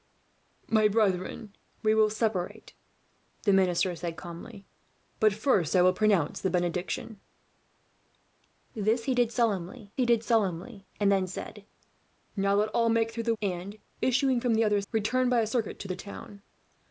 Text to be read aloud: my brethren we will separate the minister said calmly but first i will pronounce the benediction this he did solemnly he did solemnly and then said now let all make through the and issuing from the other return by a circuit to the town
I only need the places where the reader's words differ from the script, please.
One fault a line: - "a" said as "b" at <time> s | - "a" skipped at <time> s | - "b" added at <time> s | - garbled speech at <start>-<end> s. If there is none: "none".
none